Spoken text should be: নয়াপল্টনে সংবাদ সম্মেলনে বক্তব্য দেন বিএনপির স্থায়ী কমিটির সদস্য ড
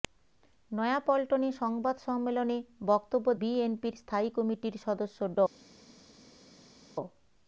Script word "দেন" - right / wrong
wrong